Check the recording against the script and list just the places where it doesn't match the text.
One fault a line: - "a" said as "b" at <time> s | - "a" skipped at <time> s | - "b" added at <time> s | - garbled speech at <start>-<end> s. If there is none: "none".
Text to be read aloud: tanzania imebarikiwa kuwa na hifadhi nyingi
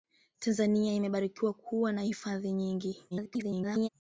- garbled speech at 3.1-3.9 s